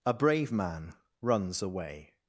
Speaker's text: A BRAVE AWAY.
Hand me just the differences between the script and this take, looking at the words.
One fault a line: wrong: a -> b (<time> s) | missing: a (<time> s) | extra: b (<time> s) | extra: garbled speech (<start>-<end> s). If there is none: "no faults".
extra: MAN RUNS (0.5 s)